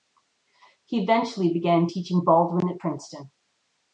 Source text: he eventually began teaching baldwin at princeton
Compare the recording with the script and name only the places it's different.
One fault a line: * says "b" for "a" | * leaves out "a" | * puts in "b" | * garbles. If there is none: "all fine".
all fine